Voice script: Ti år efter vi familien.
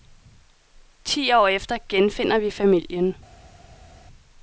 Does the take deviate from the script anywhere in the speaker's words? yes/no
yes